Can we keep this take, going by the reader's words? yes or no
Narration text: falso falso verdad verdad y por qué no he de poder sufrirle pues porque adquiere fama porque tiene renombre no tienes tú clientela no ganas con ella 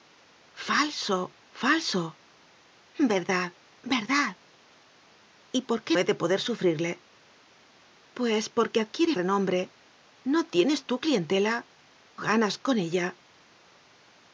no